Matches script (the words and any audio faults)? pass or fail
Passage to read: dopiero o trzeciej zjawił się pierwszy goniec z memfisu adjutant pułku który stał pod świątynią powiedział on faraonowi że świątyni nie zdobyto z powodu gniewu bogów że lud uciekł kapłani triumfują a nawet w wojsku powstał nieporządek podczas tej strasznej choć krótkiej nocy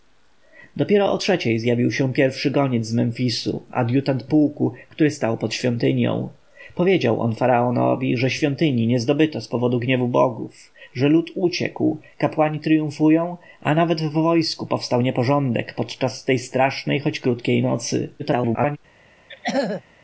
fail